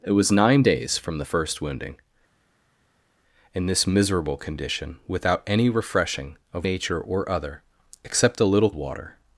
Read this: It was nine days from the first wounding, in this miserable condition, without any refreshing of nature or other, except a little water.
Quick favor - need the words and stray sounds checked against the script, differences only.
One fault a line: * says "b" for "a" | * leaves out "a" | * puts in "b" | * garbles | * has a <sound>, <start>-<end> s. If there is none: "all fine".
all fine